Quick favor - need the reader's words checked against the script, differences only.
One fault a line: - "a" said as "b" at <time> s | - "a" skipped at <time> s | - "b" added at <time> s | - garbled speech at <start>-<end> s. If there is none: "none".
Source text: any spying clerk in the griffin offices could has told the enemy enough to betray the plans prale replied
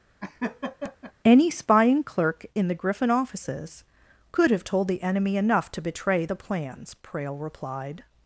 - "has" said as "have" at 4.5 s